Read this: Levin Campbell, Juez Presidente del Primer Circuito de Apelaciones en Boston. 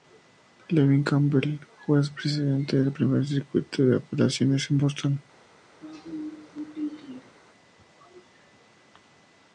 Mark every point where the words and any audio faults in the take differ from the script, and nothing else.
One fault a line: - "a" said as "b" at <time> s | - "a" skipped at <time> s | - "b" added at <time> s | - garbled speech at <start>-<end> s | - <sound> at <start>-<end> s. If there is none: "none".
- throat clearing at 5.8-7.3 s